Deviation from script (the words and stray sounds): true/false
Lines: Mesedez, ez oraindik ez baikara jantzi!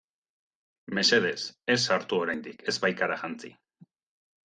true